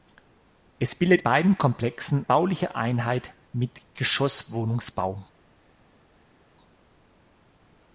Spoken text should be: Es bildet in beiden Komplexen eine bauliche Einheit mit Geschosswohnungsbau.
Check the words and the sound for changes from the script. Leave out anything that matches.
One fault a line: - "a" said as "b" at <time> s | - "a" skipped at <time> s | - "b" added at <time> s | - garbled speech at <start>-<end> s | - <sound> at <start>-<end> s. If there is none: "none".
- "in" skipped at 1.2 s
- "eine" skipped at 2.3 s